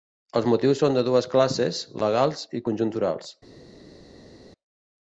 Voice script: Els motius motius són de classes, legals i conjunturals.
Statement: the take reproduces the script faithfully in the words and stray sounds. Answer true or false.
false